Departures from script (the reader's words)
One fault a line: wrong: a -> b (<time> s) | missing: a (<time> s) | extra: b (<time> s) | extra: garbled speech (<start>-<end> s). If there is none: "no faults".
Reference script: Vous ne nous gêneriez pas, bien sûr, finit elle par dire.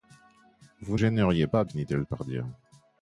missing: ne nous (1.0 s)
missing: bien sûr (1.6 s)